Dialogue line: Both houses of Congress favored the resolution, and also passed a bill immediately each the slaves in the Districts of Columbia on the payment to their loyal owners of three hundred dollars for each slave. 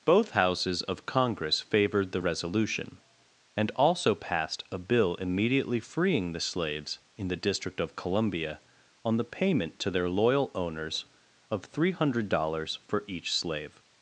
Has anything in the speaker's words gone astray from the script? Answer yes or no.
yes